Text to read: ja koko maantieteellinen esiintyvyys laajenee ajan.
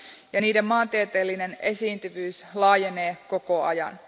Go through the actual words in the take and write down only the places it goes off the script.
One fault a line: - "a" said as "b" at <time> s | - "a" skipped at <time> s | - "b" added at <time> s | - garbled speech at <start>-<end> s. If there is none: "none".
- "koko" said as "niiden" at 0.4 s
- "koko" added at 3.3 s